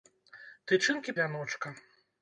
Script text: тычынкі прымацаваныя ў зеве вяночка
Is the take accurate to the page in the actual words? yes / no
no